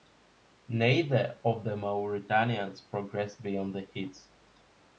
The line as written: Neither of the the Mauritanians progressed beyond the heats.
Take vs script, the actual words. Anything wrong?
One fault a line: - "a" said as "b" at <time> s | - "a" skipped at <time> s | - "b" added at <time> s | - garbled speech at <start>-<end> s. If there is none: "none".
- "the" skipped at 1.8 s